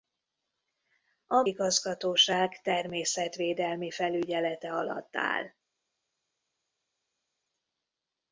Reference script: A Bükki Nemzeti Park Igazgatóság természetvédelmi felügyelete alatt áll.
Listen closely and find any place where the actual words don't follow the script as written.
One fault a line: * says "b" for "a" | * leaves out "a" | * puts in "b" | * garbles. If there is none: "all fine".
* leaves out "Bükki Nemzeti Park"